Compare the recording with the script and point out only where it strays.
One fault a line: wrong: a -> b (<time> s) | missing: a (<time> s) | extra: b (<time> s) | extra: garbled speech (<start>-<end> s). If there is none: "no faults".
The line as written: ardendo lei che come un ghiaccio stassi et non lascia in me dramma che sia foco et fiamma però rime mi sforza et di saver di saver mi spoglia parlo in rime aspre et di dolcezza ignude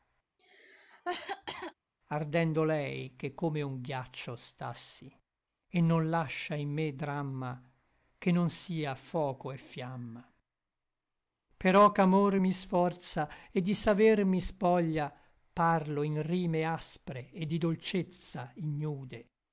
extra: non (8.3 s)
wrong: rime -> ch'amor (11.9 s)
missing: di saver (14.2 s)